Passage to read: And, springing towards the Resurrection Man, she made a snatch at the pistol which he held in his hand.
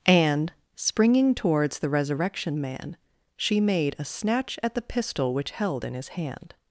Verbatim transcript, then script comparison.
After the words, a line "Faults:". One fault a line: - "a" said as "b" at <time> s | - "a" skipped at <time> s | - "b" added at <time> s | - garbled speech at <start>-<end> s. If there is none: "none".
And, springing towards the Resurrection Man, she made a snatch at the pistol which held in his hand.
Faults:
- "he" skipped at 5.5 s